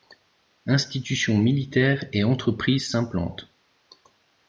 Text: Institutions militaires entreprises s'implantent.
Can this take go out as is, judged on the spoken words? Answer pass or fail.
fail